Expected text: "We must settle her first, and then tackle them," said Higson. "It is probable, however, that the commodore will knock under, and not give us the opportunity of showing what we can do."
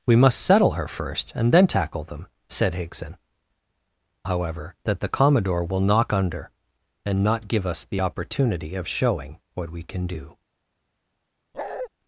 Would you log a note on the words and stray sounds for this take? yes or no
yes